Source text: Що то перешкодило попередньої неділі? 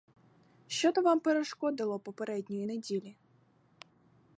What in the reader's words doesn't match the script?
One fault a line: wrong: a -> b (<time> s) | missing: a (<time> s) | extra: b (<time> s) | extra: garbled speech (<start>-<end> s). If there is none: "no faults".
extra: вам (1.0 s)